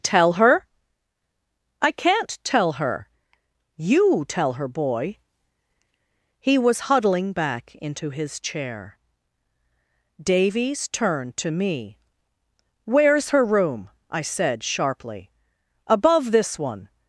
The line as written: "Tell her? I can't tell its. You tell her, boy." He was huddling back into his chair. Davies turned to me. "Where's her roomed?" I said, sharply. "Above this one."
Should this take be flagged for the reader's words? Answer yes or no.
yes